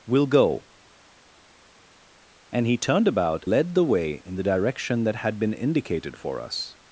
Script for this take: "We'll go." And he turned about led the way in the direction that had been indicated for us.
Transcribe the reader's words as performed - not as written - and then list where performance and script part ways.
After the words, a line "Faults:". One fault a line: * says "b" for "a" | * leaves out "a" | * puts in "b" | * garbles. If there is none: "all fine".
"We'll go." And he turned about led the way in the direction that had been indicated for us.
Faults:
all fine